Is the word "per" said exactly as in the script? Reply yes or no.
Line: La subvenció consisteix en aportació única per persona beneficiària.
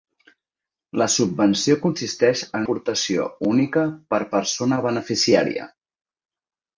yes